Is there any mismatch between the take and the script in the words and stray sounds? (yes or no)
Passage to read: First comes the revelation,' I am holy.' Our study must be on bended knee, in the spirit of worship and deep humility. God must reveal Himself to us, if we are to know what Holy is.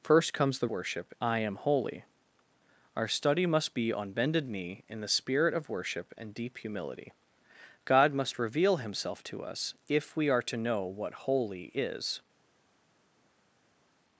yes